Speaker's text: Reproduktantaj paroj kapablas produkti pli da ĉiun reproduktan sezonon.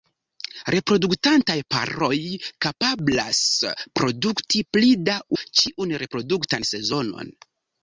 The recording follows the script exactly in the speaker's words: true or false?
true